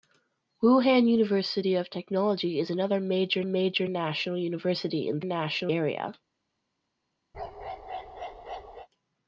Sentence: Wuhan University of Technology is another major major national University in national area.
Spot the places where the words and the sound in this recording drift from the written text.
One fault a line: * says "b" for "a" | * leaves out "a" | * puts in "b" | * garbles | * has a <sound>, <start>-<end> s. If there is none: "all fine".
* has a bark, 7.3-8.9 s